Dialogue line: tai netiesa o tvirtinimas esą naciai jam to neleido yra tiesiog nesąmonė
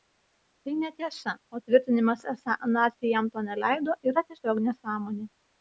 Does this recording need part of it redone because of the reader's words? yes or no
no